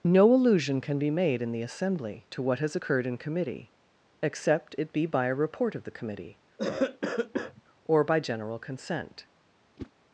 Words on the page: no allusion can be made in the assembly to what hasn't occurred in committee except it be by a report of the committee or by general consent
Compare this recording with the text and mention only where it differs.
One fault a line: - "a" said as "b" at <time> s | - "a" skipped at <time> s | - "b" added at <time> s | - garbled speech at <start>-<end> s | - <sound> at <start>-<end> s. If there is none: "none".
- "hasn't" said as "has" at 2.6 s
- cough at 6.6-7.6 s
- whoosh at 9.8-9.9 s